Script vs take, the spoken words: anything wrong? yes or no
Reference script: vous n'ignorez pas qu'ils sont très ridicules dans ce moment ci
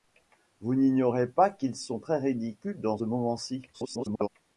yes